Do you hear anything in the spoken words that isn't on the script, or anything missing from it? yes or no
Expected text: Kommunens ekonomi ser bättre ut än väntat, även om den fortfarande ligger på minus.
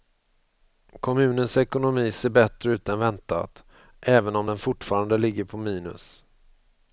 no